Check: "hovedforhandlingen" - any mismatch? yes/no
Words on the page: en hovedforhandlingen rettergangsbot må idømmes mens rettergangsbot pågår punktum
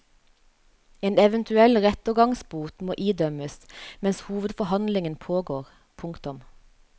yes